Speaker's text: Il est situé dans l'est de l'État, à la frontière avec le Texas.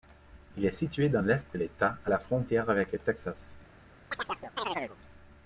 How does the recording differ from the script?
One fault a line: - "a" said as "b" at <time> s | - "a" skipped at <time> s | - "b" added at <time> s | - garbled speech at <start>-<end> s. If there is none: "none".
none